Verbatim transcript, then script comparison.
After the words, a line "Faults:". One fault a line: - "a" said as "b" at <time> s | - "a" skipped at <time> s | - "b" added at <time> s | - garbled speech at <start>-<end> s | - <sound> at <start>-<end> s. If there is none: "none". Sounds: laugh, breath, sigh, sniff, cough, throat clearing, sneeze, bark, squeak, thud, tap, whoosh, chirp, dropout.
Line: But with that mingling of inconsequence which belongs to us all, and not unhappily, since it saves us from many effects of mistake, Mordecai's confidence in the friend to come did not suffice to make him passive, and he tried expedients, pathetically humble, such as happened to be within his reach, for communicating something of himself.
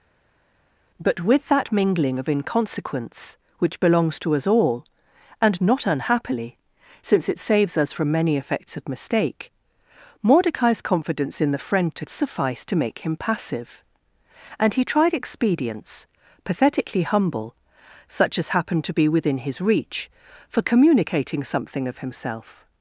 But with that mingling of inconsequence which belongs to us all, and not unhappily, since it saves us from many effects of mistake, Mordecai's confidence in the friend to suffice to make him passive, and he tried expedients, pathetically humble, such as happened to be within his reach, for communicating something of himself.
Faults:
- "come did not" skipped at 12.1 s